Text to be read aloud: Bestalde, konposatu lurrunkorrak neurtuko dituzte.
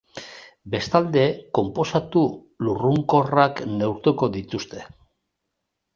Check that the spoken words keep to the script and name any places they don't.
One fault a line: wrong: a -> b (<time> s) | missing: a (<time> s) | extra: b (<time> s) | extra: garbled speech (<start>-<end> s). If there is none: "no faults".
no faults